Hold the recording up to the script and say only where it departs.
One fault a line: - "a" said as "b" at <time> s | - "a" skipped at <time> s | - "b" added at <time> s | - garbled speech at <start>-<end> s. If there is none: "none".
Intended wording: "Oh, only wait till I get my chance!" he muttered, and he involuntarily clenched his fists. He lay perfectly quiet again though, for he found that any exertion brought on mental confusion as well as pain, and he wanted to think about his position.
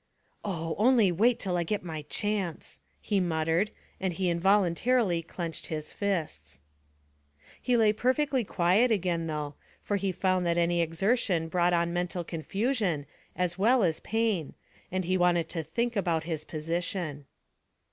none